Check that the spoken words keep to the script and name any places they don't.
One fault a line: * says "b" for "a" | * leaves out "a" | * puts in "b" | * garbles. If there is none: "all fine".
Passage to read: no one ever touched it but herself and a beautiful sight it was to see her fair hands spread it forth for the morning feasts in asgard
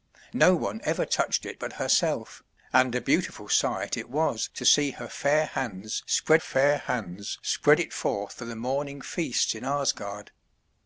* puts in "fair hands spread"